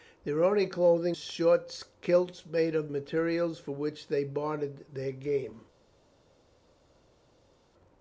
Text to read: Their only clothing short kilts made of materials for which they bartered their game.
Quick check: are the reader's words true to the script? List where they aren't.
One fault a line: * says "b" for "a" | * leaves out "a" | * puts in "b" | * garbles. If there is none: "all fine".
all fine